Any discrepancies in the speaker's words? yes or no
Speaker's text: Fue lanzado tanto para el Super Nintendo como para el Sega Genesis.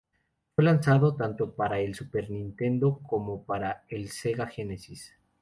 no